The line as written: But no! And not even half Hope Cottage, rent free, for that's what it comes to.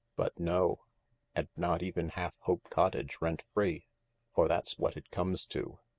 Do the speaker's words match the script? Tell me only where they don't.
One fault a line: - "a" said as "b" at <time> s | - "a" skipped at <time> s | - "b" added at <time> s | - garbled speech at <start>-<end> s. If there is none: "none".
none